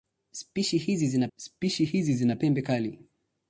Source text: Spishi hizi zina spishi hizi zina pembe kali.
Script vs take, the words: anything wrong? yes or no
no